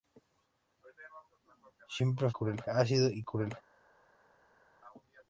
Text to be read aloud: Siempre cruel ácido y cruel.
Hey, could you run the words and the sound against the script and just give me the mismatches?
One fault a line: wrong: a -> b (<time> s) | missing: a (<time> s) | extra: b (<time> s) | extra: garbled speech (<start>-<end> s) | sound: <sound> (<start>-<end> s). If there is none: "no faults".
no faults